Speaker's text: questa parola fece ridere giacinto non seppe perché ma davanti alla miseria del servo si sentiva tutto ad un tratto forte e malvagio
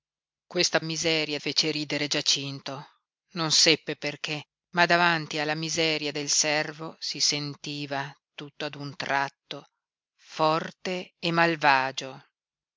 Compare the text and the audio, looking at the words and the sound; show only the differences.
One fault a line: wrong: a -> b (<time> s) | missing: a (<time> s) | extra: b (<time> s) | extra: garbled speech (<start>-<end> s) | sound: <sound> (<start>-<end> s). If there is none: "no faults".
wrong: parola -> miseria (0.8 s)